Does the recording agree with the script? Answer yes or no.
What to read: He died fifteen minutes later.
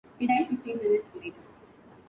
yes